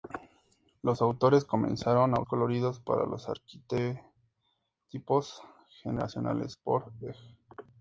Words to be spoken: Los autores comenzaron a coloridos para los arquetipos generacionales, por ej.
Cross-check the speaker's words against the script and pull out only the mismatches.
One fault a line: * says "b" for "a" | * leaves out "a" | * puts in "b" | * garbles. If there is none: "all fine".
all fine